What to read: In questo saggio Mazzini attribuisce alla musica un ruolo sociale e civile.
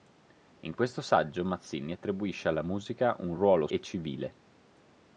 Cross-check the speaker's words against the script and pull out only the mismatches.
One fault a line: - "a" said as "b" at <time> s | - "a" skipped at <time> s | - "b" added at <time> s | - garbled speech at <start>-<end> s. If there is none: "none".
- "sociale" skipped at 3.7 s